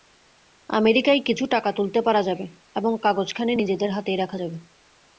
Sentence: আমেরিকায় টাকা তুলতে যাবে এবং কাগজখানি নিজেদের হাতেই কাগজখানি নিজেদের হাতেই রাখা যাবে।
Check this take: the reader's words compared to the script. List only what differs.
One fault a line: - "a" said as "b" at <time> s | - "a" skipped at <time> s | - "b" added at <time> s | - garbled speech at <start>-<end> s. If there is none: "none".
- "কিছু" added at 1.3 s
- "পারা" added at 2.0 s
- "কাগজখানি নিজেদের হাতেই" skipped at 4.2 s